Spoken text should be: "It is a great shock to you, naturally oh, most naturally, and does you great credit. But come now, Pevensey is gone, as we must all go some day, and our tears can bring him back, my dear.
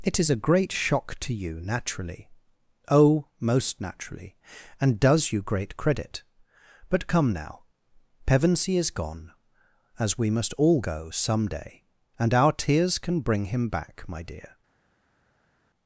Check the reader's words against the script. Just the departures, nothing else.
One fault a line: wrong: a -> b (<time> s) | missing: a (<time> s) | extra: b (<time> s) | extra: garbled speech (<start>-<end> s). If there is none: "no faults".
no faults